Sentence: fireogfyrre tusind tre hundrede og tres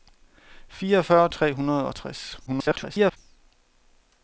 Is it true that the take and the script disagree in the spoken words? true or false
true